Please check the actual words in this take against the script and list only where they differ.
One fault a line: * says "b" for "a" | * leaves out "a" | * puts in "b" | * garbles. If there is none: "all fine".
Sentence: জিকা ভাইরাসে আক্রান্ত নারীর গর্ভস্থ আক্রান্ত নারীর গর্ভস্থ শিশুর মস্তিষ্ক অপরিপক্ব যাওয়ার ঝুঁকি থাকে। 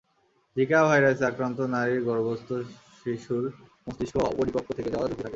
* leaves out "আক্রান্ত নারীর গর্ভস্থ"
* puts in "থেকে"